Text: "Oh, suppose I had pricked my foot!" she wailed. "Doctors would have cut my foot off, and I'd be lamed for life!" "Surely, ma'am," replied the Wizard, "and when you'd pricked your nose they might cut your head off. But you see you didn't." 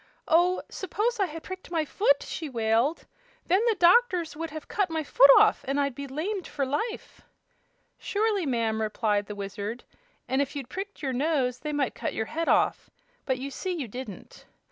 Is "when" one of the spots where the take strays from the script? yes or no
yes